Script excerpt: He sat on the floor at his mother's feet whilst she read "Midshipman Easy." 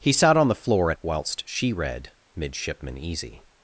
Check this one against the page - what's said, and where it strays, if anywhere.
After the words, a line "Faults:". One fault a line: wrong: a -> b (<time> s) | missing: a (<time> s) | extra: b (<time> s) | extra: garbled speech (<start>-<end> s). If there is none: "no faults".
He sat on the floor at whilst she read "Midshipman Easy."
Faults:
missing: his mother's feet (1.0 s)